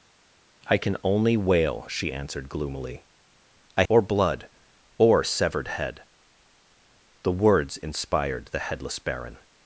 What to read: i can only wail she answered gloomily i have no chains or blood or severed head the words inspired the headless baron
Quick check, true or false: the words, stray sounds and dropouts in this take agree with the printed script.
false